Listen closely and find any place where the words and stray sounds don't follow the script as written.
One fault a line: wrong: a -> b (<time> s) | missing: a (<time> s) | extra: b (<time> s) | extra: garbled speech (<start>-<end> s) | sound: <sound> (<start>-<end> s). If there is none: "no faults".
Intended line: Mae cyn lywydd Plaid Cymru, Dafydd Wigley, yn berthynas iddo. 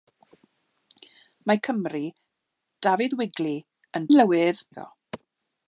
missing: cyn lywydd Plaid (1.6 s)
wrong: berthynas -> lywydd (4.1 s)